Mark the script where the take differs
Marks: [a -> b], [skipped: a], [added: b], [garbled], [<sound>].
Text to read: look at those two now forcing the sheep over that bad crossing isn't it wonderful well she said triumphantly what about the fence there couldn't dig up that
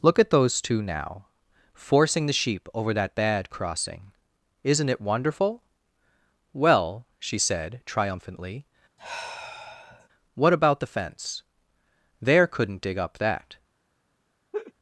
look at those two now forcing the sheep over that bad crossing isn't it wonderful well she said triumphantly [sigh] what about the fence there couldn't dig up that [laugh]